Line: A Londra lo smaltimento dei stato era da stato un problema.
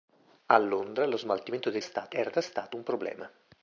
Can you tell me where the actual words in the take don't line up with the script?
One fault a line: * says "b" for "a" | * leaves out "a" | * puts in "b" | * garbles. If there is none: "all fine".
all fine